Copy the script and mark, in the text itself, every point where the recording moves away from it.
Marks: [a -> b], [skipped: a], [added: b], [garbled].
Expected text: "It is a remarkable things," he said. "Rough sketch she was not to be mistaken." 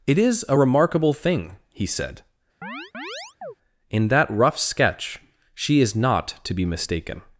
"It is a remarkable [things," -> thing] he said. [added: In that] "Rough sketch she [was -> is] not to be mistaken."